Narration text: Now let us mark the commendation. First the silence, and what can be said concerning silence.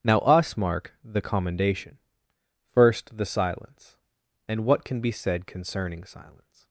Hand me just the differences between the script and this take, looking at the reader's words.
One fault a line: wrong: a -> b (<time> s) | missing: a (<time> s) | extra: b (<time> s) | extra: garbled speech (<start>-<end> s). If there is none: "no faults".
missing: let (0.2 s)